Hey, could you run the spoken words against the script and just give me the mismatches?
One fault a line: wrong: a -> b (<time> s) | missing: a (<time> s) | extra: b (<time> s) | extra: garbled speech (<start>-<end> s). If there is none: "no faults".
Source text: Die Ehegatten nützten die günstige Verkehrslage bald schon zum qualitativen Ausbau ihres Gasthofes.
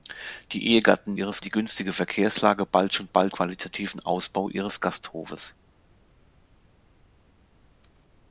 wrong: nützten -> ihres (1.1 s)
wrong: zum -> bald (3.1 s)